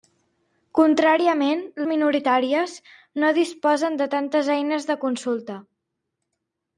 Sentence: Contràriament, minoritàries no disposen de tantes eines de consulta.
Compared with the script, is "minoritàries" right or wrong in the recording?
right